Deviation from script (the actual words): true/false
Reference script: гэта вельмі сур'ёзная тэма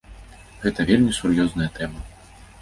false